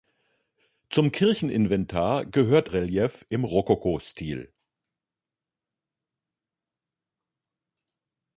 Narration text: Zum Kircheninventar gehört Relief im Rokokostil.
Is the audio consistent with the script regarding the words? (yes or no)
yes